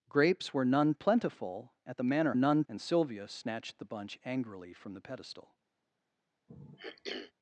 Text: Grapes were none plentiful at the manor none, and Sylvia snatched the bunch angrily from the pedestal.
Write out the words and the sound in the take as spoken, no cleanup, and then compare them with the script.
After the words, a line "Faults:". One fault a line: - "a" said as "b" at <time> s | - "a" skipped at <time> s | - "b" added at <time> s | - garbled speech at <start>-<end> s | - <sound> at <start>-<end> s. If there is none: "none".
Grapes were none plentiful at the manor none, and Sylvia snatched the bunch angrily from the pedestal.
Faults:
- throat clearing at 6.5-7.3 s